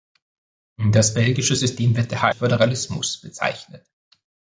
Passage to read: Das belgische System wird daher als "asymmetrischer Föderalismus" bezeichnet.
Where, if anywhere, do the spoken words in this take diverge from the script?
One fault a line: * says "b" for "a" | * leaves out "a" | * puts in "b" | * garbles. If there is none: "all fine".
* leaves out "als asymmetrischer"